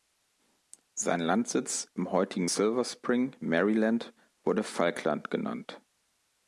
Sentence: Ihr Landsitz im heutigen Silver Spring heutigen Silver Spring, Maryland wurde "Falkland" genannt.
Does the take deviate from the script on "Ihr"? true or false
true